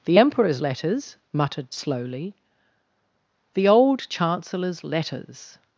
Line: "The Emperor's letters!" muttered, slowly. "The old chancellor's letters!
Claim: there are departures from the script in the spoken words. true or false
false